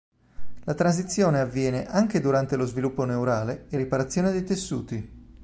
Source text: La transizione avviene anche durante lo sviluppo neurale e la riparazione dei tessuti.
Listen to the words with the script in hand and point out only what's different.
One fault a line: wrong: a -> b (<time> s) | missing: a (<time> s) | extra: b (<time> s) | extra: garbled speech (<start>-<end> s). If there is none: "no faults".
missing: la (3.8 s)